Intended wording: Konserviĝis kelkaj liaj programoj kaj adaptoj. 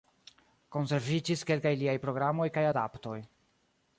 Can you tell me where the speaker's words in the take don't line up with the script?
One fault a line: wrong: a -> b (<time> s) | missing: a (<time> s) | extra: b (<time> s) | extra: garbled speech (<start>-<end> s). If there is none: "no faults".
no faults